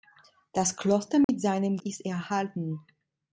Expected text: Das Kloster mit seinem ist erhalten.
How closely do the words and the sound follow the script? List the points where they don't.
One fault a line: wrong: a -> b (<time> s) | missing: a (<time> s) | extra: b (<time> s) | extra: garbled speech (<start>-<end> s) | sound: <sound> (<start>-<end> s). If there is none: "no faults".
sound: dropout (1.2-1.3 s)